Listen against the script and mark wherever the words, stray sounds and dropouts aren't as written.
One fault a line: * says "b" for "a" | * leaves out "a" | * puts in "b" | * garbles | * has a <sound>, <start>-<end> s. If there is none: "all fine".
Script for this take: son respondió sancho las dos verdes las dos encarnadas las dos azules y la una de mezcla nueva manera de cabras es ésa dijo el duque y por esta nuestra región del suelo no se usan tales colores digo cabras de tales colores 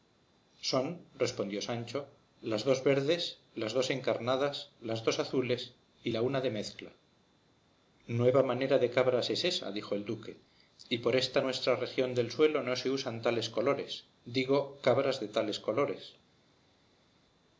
all fine